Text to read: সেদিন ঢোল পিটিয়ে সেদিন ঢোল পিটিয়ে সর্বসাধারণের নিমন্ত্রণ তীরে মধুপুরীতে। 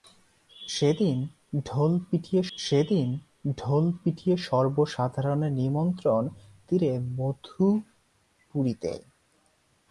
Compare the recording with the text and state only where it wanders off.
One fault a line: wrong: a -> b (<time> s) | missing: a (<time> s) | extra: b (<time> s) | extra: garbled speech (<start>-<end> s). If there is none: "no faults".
no faults